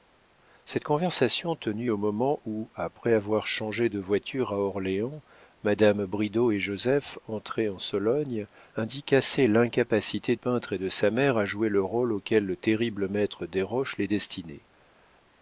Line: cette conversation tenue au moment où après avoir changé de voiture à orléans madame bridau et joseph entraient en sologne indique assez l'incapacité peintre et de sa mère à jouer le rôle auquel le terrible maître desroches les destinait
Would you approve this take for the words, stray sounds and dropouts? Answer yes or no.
yes